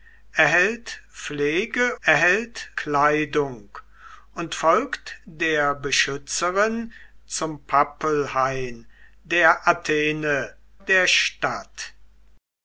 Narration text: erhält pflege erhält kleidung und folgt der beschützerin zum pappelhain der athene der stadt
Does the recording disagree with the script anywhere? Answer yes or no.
no